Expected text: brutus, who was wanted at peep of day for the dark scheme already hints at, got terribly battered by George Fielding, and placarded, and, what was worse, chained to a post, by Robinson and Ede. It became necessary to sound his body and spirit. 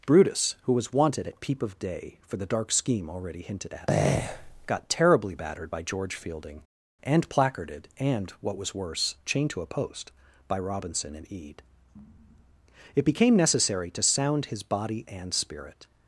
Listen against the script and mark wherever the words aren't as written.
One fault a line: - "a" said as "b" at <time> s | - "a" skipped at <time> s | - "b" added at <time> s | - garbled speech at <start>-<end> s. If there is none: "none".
- "hints" said as "hinted" at 3.4 s